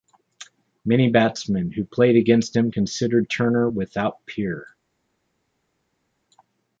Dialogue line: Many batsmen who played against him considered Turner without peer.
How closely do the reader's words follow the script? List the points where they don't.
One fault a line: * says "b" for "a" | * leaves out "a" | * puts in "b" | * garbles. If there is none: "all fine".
all fine